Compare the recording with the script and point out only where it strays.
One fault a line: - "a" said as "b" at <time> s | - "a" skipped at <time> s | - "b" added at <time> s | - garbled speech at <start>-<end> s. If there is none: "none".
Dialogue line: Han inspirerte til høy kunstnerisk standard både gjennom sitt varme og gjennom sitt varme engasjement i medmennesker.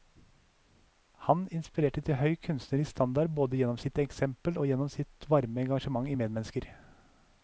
- "varme" said as "eksempel" at 4.0 s